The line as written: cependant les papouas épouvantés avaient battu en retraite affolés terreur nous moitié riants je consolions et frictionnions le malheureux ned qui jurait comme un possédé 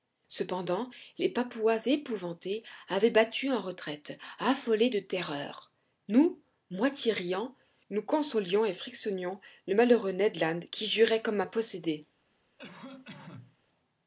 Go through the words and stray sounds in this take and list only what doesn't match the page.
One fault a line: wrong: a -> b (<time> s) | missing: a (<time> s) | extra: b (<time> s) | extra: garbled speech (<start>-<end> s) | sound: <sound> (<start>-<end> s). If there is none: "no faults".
extra: de (4.9 s)
wrong: je -> nous (7.9 s)
extra: land (10.4 s)
sound: cough (12.6-13.6 s)